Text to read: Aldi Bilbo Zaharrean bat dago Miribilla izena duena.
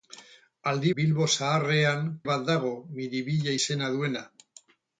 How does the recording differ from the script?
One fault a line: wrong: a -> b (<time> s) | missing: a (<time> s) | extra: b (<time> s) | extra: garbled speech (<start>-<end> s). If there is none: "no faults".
no faults